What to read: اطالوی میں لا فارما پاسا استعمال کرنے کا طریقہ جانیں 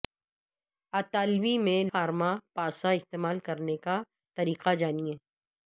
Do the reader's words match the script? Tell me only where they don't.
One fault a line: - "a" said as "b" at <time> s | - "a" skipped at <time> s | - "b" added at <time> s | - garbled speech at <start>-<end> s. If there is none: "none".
- "لا" skipped at 1.8 s